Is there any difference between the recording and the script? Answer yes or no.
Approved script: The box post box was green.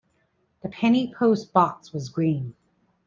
yes